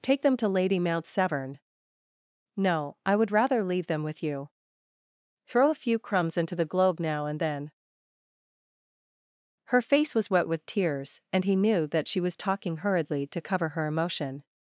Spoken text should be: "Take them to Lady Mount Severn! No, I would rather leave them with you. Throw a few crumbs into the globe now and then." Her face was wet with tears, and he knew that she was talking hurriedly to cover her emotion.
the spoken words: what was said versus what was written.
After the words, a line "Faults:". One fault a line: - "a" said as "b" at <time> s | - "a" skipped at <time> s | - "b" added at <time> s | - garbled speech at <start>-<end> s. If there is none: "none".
"Take them to Lady Mount Severn! No, I would rather leave them with you. Throw a few crumbs into the globe now and then." Her face was wet with tears, and he knew that she was talking hurriedly to cover her emotion.
Faults:
none